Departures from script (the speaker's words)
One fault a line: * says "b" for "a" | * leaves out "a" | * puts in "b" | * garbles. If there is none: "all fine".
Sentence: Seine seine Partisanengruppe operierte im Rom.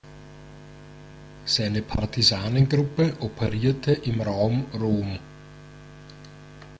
* leaves out "seine"
* puts in "Raum"